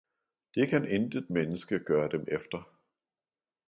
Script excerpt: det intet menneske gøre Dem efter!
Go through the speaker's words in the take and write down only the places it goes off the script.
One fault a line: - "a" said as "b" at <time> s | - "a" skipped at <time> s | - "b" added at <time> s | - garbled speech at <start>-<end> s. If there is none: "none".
- "kan" added at 0.7 s